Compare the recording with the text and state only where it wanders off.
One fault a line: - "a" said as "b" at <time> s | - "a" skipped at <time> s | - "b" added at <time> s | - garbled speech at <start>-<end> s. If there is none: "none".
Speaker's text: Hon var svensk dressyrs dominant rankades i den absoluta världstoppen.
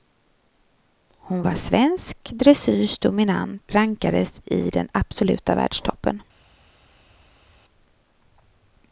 none